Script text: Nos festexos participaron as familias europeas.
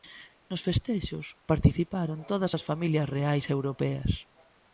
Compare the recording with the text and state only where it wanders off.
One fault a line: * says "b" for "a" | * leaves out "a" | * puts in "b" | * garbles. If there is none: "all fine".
* puts in "todas"
* puts in "reais"